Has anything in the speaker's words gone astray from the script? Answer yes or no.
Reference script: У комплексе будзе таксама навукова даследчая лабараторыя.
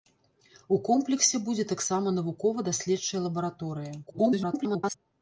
yes